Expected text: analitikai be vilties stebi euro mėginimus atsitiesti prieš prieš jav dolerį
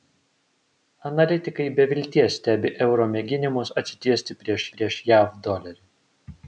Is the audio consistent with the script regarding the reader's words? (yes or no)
yes